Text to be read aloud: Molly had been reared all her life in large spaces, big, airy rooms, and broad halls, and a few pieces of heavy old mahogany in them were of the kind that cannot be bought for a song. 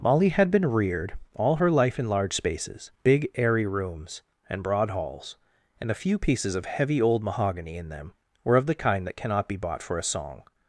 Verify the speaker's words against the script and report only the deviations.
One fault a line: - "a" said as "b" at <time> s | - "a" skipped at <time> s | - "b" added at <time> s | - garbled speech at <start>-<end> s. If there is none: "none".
none